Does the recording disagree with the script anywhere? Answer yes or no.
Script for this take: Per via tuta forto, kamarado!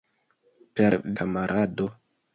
yes